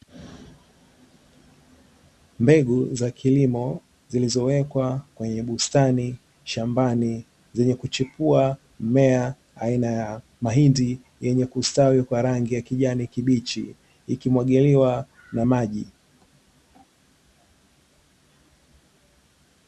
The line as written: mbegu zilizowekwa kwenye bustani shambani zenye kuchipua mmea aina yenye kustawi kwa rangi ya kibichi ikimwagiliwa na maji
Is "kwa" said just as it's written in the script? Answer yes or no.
yes